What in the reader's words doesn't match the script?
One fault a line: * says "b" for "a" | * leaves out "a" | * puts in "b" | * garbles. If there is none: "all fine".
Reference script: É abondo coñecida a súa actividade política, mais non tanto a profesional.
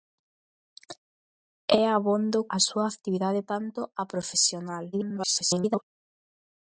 * leaves out "coñecida"
* leaves out "política mais non"
* garbles